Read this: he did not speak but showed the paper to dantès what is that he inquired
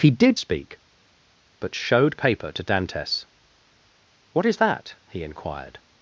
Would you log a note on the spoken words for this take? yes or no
yes